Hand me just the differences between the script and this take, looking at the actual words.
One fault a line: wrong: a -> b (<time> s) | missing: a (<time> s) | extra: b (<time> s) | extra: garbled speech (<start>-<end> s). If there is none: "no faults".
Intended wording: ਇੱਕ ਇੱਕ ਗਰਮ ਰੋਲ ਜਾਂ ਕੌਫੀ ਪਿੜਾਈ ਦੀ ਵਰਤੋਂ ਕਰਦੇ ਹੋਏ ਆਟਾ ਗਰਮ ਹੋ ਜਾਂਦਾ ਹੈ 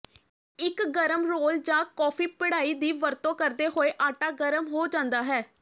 missing: ਇੱਕ (0.8 s)